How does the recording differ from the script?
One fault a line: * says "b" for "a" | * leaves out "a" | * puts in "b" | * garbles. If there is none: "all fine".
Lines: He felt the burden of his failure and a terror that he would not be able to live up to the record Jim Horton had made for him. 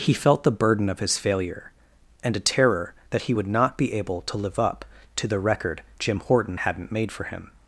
* says "hadn't" for "had"